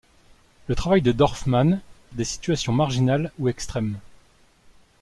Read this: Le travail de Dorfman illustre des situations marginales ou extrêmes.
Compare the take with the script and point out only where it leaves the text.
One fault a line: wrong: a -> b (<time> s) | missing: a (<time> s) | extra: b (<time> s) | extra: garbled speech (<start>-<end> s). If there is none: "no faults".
missing: illustre (1.8 s)